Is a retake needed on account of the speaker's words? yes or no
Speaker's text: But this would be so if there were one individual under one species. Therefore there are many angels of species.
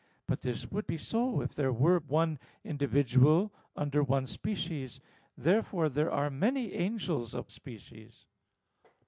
no